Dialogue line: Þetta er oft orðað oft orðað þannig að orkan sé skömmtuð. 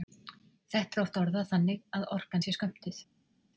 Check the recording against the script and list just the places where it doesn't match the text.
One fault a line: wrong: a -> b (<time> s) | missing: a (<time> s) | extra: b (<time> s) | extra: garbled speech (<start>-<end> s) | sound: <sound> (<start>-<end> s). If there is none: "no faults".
missing: oft orðað (1.5 s)